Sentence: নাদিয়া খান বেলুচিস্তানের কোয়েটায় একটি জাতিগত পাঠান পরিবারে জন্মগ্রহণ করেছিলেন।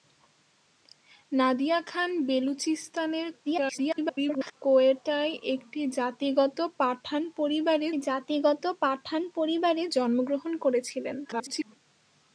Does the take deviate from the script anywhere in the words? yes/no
yes